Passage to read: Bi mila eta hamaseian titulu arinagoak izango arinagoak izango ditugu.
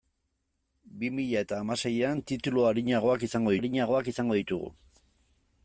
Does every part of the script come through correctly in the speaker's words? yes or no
yes